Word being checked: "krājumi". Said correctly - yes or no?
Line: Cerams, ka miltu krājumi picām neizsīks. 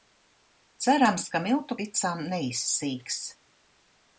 no